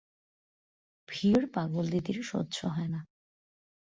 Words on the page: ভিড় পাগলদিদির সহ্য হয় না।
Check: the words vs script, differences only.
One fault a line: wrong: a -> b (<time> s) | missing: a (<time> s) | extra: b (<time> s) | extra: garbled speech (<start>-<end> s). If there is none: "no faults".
no faults